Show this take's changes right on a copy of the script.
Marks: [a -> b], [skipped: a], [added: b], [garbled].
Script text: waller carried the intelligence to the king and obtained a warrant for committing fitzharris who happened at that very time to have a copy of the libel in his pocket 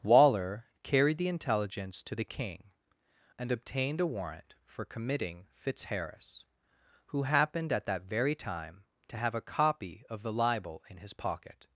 waller carried the intelligence to the king and obtained a warrant for committing fitzharris who happened at that very time to have a copy of the libel in his pocket